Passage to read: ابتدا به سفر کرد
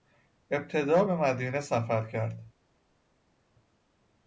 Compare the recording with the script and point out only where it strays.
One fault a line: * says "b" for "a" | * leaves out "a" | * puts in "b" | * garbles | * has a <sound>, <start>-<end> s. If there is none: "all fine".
* puts in "مدینه"